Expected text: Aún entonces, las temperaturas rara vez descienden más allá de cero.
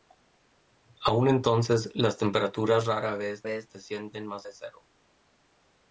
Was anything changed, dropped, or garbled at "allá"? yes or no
yes